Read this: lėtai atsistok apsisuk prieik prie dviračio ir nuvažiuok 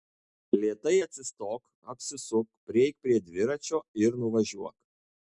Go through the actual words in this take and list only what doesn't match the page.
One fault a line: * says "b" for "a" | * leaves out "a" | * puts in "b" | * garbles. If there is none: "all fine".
all fine